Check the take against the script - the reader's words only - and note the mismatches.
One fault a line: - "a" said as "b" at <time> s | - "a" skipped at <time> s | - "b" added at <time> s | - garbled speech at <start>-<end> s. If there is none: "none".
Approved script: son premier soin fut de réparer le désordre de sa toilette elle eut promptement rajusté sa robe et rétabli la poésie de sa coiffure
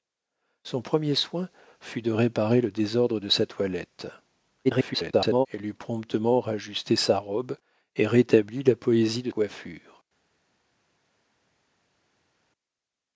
- garbled speech at 4.6-5.5 s
- "sa" skipped at 9.3 s